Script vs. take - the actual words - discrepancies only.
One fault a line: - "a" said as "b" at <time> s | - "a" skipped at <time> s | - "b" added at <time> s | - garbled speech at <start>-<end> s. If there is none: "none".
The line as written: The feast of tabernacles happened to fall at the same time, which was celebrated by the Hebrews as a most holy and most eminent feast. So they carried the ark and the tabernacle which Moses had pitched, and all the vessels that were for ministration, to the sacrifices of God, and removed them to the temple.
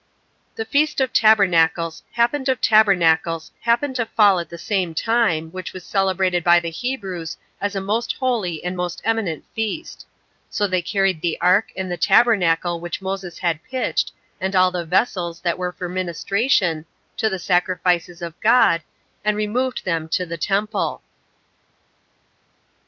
- "of tabernacles happened" added at 2.5 s